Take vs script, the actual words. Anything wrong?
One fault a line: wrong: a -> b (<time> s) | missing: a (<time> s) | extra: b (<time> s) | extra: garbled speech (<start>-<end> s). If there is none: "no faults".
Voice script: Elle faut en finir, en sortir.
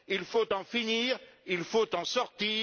wrong: Elle -> Il (0.1 s)
extra: il faut (1.5 s)